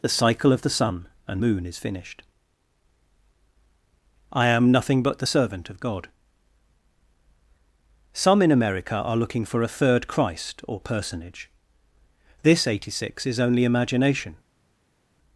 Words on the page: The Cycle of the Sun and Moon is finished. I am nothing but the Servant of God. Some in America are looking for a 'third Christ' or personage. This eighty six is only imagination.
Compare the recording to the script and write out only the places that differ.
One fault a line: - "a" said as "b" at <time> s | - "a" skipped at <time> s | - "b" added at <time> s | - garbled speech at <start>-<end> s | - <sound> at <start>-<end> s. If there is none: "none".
none